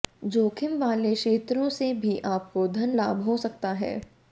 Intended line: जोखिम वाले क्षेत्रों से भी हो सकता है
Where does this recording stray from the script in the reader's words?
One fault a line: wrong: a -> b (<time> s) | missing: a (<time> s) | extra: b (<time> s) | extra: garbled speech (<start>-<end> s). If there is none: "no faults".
extra: आपको धन लाभ (2.3 s)